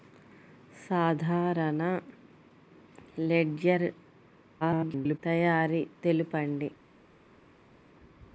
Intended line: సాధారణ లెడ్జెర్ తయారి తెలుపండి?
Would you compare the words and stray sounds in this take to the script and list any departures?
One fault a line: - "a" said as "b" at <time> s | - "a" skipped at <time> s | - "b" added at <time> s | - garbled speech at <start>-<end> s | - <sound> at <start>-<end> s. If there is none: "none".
- garbled speech at 4.6-5.2 s